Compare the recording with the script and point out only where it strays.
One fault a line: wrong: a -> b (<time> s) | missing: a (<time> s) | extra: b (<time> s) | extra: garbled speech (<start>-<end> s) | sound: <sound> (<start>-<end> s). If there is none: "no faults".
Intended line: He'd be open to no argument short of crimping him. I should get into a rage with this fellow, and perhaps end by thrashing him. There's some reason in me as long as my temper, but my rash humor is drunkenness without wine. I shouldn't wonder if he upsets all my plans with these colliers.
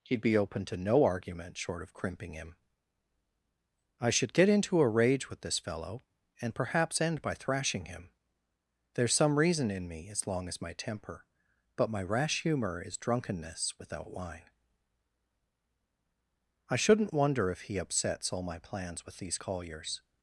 no faults